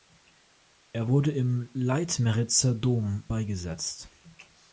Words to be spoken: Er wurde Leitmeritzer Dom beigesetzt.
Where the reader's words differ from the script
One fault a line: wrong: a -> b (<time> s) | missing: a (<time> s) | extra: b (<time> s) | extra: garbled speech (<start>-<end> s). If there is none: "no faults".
extra: im (1.3 s)